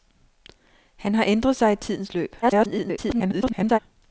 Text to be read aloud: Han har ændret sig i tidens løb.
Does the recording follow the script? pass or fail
fail